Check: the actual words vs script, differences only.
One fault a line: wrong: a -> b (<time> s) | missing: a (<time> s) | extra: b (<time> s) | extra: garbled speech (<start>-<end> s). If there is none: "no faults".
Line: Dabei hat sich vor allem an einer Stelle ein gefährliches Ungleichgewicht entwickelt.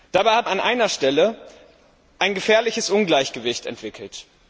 missing: sich vor allem (0.5 s)